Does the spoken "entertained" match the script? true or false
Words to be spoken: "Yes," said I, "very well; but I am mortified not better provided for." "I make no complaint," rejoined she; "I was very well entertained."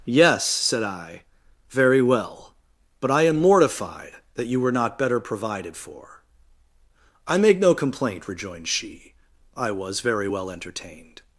true